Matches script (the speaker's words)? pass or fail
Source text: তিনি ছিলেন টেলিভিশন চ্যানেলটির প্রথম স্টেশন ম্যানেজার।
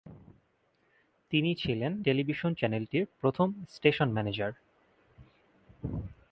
pass